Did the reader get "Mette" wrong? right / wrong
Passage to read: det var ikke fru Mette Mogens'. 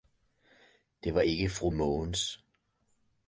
wrong